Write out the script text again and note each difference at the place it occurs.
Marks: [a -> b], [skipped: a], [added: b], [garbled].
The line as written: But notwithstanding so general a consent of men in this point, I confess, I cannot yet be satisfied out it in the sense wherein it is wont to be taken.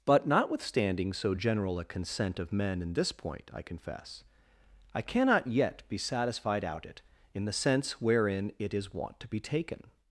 But notwithstanding so general a consent of men in this point, I confess, I cannot yet be satisfied out it in the sense wherein it is wont to be taken.